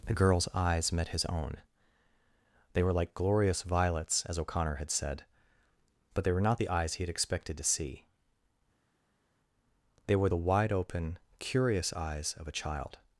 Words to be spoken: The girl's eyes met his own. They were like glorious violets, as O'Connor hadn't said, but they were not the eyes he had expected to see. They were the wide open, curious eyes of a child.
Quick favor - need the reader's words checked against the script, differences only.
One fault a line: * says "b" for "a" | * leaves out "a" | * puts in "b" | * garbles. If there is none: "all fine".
* says "had" for "hadn't"